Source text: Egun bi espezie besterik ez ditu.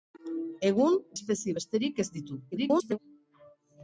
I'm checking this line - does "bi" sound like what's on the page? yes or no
no